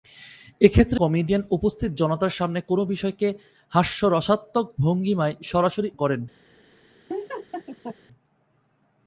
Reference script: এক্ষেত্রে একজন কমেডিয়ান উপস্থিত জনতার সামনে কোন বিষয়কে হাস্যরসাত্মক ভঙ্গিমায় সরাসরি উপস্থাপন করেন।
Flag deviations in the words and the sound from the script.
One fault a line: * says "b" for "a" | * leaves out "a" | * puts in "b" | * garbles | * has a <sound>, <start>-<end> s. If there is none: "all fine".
* leaves out "একজন"
* leaves out "উপস্থাপন"
* has a laugh, 7.1-8.0 s